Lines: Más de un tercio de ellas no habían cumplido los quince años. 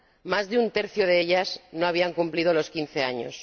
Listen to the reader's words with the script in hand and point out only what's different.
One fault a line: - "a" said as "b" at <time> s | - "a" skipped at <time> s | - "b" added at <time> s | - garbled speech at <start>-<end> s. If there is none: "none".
none